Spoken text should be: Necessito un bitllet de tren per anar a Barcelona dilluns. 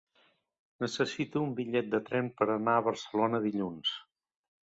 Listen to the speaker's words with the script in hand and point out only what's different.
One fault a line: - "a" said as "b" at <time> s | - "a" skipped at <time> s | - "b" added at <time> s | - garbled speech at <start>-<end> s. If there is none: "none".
none